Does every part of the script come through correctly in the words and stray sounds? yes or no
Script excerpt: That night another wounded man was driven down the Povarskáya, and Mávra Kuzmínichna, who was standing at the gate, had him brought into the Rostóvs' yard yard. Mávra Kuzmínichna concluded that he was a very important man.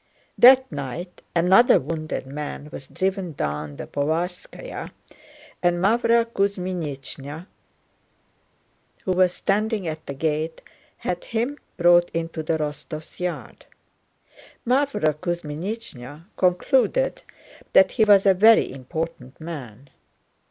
no